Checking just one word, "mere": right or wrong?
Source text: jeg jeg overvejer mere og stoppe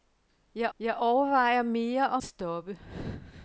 right